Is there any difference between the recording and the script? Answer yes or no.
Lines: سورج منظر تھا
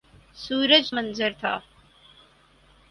no